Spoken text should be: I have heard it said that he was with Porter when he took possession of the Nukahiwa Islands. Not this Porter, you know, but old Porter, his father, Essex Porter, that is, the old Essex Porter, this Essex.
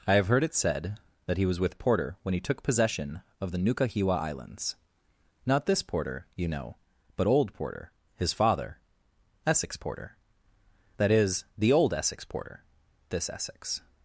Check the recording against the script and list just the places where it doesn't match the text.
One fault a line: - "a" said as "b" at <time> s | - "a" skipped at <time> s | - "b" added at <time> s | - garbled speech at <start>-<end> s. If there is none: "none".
none